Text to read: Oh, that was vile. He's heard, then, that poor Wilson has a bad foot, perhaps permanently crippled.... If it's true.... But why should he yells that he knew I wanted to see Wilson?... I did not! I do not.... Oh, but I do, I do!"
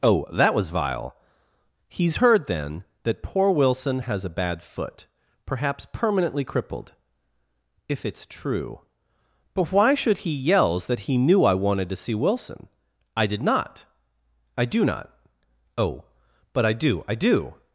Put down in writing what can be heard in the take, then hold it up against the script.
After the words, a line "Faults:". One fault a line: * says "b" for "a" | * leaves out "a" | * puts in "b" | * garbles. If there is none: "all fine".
Oh, that was vile. He's heard, then, that poor Wilson has a bad foot, perhaps permanently crippled.... If it's true.... But why should he yells that he knew I wanted to see Wilson?... I did not! I do not.... Oh, but I do, I do!"
Faults:
all fine